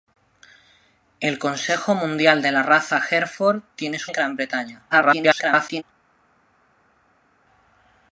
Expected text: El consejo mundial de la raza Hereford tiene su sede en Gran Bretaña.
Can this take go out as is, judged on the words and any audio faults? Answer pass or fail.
fail